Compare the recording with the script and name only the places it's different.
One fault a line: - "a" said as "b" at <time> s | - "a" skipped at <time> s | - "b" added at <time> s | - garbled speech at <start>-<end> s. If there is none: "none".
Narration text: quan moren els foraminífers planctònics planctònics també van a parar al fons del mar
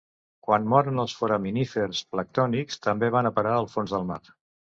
- "planctònics" skipped at 2.8 s